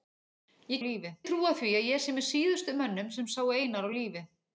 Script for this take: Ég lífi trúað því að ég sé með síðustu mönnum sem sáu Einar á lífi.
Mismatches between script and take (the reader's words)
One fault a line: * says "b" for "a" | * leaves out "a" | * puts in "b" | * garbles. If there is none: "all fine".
all fine